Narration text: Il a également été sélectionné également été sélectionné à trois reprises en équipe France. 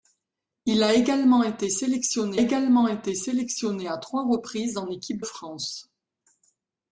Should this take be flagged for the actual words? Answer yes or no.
no